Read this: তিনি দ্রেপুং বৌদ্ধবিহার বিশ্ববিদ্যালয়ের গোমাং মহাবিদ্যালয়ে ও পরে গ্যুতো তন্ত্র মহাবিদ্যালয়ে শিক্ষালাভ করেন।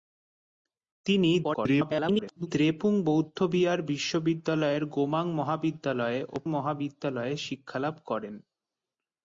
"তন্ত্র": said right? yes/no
no